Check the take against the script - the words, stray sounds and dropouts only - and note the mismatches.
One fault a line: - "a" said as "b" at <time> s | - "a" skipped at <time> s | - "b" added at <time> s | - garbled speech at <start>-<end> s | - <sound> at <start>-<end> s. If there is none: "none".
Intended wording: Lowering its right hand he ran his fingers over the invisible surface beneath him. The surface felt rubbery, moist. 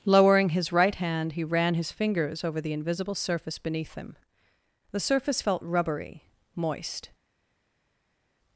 - "its" said as "his" at 0.5 s